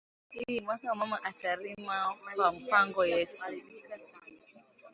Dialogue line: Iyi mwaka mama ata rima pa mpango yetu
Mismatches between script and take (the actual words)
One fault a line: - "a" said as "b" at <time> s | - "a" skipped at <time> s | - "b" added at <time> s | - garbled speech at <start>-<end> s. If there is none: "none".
none